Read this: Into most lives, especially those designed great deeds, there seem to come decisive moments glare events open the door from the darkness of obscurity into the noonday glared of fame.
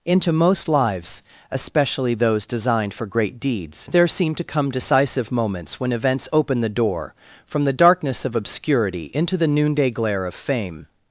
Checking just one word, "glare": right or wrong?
wrong